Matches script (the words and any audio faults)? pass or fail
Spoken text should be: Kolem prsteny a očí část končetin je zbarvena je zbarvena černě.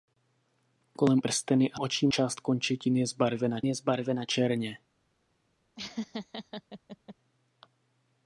fail